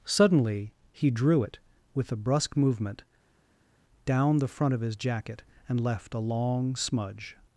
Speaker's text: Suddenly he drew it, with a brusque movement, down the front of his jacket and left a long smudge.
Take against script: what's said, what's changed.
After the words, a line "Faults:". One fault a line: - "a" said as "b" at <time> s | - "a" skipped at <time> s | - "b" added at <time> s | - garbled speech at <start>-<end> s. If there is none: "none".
Suddenly he drew it, with a brusque movement, down the front of his jacket and left a long smudge.
Faults:
none